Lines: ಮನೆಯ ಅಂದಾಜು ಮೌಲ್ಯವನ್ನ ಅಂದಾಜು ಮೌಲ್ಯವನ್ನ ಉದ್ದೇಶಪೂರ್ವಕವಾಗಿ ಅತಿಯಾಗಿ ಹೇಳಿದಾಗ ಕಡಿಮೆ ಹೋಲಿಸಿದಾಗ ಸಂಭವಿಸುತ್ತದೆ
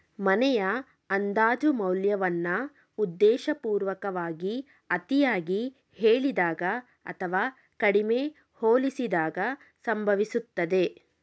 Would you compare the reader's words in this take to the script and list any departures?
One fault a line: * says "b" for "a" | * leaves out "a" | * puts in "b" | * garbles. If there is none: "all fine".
* leaves out "ಅಂದಾಜು ಮೌಲ್ಯವನ್ನ"
* puts in "ಅಥವಾ"